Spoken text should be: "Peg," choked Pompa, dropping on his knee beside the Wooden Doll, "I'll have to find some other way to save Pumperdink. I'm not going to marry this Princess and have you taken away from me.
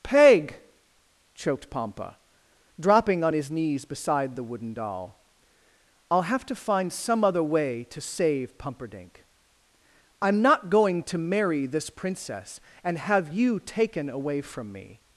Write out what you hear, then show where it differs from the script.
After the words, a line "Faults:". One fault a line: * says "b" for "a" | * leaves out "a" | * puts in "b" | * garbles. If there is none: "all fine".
"Peg," choked Pompa, dropping on his knees beside the Wooden Doll, "I'll have to find some other way to save Pumperdink. I'm not going to marry this Princess and have you taken away from me.
Faults:
* says "knees" for "knee"